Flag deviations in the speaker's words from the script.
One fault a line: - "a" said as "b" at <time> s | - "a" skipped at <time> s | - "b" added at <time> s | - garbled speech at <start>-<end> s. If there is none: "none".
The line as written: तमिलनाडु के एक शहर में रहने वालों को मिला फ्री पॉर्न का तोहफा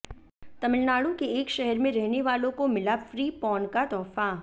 none